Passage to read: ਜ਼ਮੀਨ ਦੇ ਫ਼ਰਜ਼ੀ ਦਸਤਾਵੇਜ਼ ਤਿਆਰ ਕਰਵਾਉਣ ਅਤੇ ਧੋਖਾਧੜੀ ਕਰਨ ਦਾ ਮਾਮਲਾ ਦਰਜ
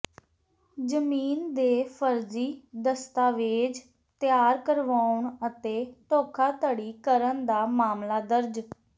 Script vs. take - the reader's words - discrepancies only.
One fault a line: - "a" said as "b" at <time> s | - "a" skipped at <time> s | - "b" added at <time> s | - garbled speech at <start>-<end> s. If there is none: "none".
none